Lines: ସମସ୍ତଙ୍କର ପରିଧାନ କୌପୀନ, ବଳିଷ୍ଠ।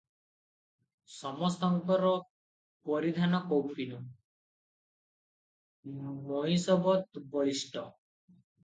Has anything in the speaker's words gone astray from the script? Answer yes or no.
yes